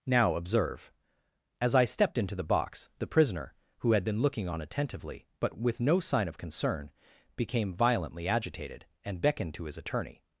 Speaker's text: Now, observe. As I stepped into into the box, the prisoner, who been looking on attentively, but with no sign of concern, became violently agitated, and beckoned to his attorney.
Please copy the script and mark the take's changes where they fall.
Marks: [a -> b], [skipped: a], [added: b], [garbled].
Now, observe. As I stepped into [skipped: into] the box, the prisoner, who [added: had] been looking on attentively, but with no sign of concern, became violently agitated, and beckoned to his attorney.